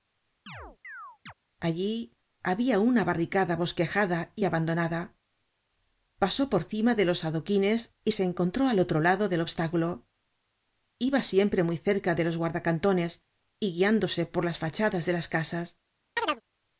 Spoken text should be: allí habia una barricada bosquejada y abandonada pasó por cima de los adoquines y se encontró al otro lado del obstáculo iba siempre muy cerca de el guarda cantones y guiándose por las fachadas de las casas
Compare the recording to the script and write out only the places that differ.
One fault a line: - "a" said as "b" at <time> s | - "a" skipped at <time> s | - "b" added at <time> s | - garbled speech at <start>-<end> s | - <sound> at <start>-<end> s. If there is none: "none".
- chirp at 0.5-1.3 s
- "el" said as "los" at 12.2 s
- chirp at 16.2-16.4 s